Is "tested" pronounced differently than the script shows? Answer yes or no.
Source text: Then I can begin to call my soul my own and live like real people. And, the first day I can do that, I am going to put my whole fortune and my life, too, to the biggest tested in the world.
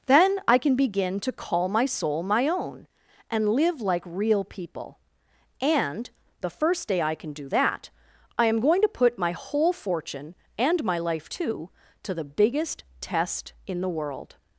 yes